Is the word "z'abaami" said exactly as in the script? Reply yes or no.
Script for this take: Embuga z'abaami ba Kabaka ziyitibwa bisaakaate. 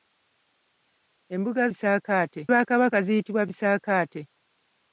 no